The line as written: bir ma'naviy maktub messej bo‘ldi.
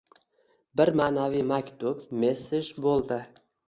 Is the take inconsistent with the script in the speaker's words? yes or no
no